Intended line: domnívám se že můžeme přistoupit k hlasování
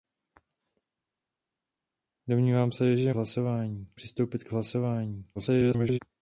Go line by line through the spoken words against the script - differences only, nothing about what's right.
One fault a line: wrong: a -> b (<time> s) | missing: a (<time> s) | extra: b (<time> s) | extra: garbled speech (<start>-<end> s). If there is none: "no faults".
wrong: můžeme -> hlasování (3.1 s)
extra: garbled speech (5.4-6.0 s)